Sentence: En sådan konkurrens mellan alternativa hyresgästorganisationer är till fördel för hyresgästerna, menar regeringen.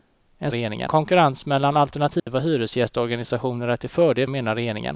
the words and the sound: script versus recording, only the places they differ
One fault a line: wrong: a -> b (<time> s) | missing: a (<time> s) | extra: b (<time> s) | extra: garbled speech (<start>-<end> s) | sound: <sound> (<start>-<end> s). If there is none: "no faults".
wrong: sådan -> regeringen (0.5 s)
sound: dropout (2.2-2.3 s)
missing: för hyresgästerna (4.3 s)